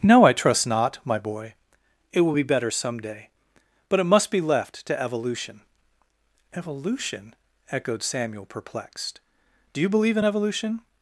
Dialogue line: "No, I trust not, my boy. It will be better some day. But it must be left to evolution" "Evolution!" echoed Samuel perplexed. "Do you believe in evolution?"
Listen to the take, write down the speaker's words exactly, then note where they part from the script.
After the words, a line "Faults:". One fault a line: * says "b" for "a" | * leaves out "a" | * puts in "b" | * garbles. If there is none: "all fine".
"No, I trust not, my boy. It will be better some day. But it must be left to evolution" "Evolution!" echoed Samuel perplexed. "Do you believe in evolution?"
Faults:
all fine